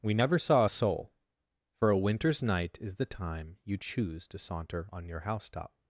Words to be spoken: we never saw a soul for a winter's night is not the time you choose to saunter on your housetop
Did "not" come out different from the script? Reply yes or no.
yes